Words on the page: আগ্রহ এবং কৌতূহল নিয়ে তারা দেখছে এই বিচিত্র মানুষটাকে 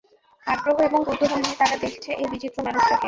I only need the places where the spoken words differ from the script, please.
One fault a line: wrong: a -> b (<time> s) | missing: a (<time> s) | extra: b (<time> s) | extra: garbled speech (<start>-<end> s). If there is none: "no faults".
no faults